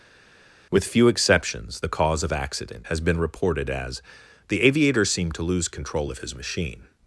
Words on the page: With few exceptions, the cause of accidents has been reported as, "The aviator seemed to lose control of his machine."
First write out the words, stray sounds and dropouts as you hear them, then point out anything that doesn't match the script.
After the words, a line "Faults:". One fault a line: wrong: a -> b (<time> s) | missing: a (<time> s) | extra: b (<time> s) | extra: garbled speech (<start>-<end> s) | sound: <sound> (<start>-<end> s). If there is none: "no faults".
With few exceptions, the cause of accident has been reported as, "The aviator seemed to lose control of his machine."
Faults:
wrong: accidents -> accident (2.3 s)